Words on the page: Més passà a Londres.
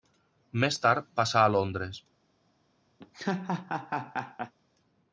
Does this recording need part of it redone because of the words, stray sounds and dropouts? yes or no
yes